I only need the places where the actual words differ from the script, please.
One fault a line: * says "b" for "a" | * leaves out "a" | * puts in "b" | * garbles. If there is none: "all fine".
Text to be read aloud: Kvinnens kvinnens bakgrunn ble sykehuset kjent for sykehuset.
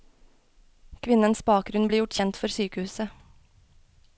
* leaves out "kvinnens"
* says "gjort" for "sykehuset"